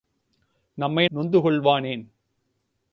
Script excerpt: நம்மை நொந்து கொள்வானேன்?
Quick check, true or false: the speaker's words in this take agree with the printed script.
true